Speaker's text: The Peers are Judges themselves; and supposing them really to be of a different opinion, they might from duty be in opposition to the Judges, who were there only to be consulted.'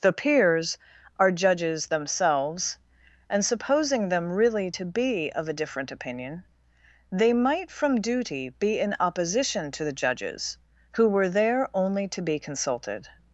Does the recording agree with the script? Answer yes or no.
yes